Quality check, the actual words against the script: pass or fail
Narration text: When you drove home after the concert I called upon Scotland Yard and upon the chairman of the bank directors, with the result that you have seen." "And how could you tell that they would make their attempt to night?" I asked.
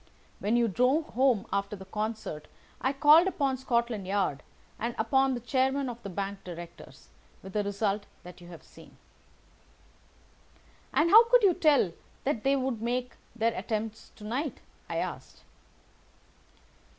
pass